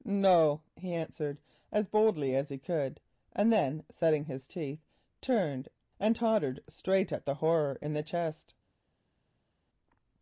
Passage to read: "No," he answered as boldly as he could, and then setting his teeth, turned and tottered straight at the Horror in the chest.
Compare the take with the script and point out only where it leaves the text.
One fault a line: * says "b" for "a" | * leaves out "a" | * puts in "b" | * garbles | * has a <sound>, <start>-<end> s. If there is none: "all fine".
all fine